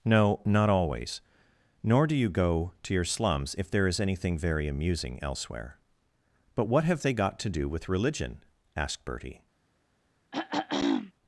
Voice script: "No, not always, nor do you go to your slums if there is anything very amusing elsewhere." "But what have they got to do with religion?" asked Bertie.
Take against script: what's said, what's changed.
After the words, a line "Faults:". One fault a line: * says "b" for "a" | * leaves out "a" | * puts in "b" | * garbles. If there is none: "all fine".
"No, not always, nor do you go to your slums if there is anything very amusing elsewhere." "But what have they got to do with religion?" asked Bertie.
Faults:
all fine